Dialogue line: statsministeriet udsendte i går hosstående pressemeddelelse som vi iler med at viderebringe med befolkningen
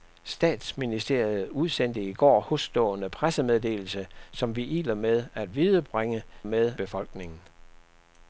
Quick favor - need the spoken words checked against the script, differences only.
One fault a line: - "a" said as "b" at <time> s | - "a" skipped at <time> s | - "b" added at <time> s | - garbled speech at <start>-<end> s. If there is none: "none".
none